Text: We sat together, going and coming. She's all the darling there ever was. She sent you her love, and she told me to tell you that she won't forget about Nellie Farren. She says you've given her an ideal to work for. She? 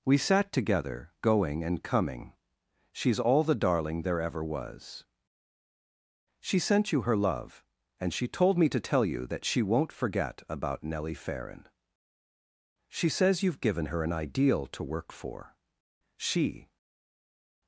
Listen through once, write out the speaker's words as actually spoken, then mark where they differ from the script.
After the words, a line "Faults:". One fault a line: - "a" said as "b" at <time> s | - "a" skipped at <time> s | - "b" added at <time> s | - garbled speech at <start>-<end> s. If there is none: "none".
We sat together, going and coming. She's all the darling there ever was. She sent you her love, and she told me to tell you that she won't forget about Nellie Farren. She says you've given her an ideal to work for. She?
Faults:
none